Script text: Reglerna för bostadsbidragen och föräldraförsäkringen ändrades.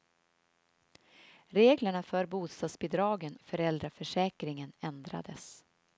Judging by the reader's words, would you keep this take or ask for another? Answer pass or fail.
fail